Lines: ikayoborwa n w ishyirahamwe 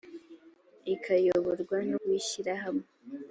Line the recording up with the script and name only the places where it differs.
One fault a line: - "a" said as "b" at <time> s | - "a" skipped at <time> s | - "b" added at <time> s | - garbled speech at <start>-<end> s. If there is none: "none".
none